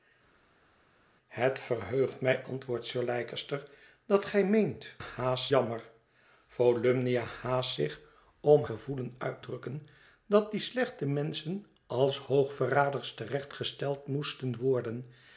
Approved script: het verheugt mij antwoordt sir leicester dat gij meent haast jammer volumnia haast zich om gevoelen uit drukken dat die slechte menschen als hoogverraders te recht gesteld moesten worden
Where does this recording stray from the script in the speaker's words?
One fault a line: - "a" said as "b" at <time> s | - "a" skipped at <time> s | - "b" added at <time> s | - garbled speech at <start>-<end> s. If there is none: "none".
none